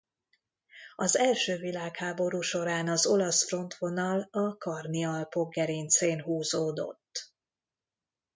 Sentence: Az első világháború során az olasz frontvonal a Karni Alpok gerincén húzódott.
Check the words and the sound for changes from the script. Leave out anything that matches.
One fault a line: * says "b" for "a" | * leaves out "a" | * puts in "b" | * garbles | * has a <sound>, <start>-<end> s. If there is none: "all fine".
all fine